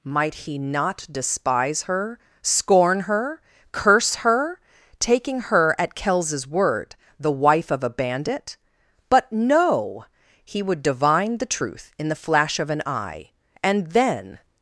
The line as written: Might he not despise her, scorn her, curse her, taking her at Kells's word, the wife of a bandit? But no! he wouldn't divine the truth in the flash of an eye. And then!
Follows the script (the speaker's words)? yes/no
no